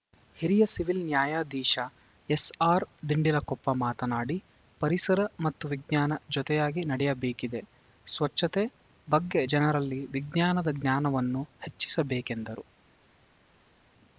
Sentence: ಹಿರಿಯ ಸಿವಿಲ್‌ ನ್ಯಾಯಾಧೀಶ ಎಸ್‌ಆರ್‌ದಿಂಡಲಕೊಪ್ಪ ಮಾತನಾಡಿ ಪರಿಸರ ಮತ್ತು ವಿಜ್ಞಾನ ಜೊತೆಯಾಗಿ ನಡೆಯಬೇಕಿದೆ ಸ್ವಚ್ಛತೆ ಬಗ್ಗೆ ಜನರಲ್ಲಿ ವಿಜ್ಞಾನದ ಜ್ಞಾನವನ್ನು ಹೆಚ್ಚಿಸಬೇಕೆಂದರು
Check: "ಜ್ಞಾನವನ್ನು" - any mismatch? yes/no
no